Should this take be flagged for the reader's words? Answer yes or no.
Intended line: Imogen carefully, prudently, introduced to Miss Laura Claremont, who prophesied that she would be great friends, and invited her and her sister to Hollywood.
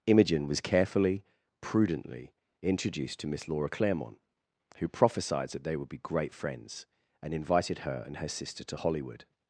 yes